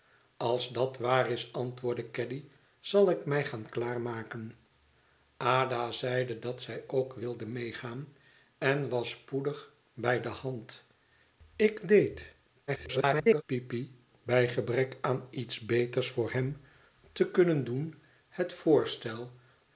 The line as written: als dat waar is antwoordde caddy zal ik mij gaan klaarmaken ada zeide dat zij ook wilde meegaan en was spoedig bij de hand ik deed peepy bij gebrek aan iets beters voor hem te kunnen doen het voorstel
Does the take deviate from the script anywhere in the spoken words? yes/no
yes